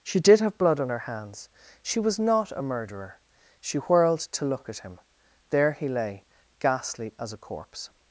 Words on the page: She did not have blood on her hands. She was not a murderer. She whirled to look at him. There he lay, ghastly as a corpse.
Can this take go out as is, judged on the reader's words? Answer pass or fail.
fail